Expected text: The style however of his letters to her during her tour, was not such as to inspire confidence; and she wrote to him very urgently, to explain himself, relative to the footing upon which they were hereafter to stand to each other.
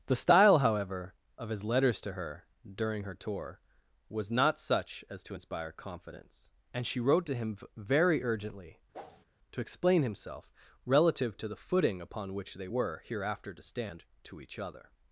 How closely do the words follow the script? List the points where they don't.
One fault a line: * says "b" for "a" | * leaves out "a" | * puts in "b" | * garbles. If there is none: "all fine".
all fine